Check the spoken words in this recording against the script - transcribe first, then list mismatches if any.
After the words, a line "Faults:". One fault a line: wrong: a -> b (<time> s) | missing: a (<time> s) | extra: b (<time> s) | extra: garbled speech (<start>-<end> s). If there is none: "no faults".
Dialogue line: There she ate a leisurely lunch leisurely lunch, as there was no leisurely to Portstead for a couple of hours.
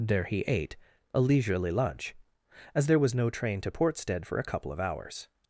There he ate a leisurely lunch, as there was no train to Portstead for a couple of hours.
Faults:
wrong: she -> he (0.2 s)
missing: leisurely lunch (2.1 s)
wrong: leisurely -> train (3.3 s)